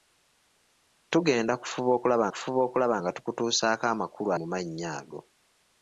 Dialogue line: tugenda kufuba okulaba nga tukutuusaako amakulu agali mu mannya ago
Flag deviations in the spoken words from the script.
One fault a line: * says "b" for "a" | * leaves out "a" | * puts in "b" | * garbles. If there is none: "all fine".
* puts in "kufuba okulaba"
* leaves out "agali"